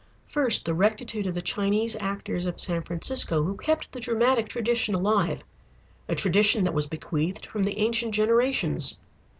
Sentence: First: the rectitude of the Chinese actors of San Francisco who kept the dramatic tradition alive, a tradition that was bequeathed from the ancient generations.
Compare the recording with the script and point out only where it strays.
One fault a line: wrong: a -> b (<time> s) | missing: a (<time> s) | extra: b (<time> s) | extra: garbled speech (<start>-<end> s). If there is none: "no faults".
no faults